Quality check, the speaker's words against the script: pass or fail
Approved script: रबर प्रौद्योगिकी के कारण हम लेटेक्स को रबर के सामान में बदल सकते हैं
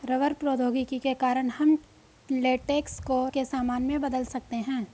fail